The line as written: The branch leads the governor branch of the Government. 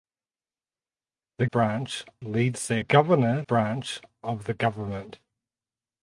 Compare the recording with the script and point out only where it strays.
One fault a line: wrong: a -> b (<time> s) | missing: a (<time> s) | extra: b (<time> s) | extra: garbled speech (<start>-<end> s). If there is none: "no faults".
no faults